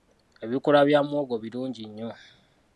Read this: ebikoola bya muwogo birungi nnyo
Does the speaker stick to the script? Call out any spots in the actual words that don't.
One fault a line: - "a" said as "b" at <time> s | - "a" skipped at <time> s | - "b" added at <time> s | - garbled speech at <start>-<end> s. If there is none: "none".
none